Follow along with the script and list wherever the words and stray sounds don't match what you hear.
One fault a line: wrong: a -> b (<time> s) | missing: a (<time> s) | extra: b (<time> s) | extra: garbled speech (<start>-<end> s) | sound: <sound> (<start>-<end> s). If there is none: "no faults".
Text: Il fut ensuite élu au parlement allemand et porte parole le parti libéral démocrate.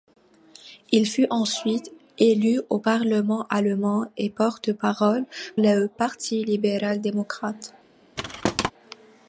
sound: thud (8.2-8.7 s)